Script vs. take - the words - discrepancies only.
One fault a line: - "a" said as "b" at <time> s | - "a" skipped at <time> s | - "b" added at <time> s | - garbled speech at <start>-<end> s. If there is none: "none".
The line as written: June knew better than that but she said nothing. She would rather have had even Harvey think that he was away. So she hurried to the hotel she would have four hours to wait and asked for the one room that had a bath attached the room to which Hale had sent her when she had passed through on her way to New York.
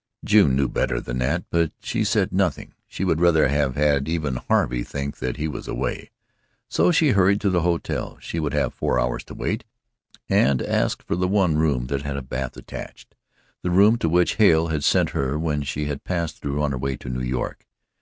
none